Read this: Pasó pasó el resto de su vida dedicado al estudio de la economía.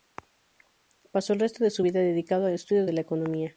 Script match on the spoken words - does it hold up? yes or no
no